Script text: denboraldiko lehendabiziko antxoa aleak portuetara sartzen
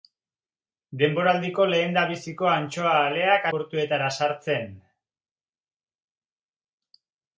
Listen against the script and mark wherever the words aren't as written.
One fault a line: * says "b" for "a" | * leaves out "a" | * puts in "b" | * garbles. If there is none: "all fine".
all fine